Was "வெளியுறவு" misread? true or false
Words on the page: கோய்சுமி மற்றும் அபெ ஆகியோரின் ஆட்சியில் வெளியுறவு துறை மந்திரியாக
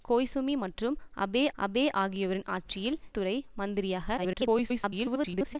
true